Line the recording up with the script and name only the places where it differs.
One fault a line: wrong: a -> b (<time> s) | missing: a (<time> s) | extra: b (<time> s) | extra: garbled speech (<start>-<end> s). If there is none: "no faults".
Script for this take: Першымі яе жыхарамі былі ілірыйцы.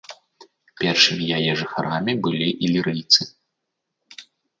no faults